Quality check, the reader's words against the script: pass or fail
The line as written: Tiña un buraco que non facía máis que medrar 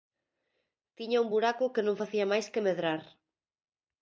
pass